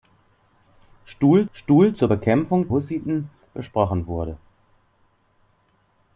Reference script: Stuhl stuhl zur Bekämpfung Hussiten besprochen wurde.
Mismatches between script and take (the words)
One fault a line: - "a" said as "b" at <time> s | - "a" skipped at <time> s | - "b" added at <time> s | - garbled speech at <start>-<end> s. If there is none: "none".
none